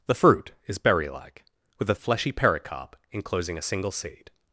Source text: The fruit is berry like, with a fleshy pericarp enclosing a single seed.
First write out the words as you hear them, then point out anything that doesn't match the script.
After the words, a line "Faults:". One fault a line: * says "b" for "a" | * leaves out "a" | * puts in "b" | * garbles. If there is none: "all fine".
The fruit is berry like, with a fleshy pericarp enclosing a single seed.
Faults:
all fine